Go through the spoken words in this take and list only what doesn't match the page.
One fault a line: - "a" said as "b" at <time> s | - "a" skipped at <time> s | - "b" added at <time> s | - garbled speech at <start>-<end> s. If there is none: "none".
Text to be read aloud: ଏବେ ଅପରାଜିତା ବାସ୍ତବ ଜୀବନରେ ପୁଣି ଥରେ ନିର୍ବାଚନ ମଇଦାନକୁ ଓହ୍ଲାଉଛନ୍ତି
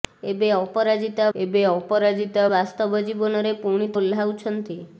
- "ଏବେ ଅପରାଜିତା" added at 1.4 s
- "ଥରେ ନିର୍ବାଚନ ମଇଦାନକୁ" skipped at 3.9 s